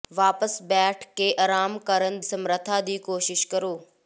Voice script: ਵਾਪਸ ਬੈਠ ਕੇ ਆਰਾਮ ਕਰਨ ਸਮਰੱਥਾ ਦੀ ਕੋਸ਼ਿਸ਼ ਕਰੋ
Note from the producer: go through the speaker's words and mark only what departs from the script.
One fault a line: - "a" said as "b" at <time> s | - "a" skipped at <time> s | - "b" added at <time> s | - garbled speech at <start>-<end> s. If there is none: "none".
none